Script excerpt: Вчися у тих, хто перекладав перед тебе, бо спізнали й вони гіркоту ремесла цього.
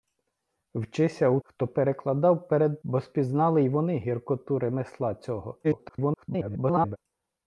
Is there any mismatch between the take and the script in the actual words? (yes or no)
yes